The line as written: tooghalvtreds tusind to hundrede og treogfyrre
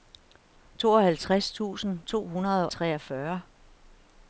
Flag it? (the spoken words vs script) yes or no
yes